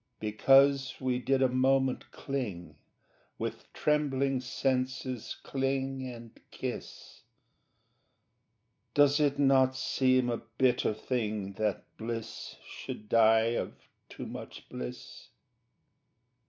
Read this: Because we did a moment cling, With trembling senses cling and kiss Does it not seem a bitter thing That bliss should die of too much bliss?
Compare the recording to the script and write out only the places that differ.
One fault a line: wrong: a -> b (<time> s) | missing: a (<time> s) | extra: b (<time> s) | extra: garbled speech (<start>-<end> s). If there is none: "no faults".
no faults